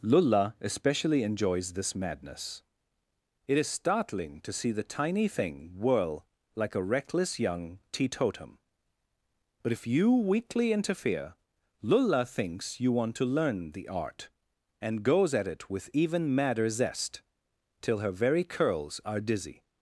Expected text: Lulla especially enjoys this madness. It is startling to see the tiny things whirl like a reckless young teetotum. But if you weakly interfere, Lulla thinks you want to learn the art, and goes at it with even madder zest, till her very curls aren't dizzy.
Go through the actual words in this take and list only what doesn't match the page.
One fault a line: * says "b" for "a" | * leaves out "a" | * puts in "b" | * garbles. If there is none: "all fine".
* says "thing" for "things"
* says "are" for "aren't"